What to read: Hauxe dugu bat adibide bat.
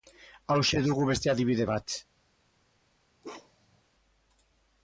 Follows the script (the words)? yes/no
no